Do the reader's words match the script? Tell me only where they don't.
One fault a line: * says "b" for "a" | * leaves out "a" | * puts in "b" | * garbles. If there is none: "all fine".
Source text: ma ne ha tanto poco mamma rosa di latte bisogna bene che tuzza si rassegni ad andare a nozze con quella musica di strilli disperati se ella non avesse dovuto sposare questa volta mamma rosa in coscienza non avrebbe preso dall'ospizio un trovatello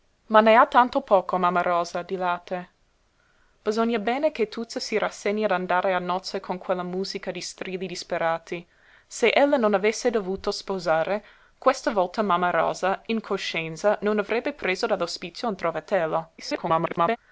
* garbles